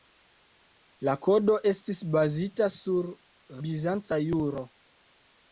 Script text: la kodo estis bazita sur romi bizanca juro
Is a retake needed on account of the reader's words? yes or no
yes